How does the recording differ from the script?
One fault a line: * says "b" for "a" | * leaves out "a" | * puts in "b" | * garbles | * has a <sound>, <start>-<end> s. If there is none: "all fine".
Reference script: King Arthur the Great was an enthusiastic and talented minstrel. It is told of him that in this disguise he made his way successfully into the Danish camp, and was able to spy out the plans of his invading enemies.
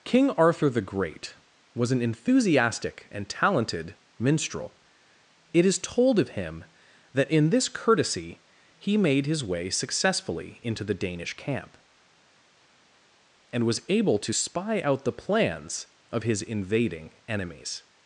* says "courtesy" for "disguise"